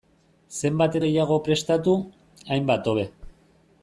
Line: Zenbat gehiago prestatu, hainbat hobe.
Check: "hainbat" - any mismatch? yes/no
no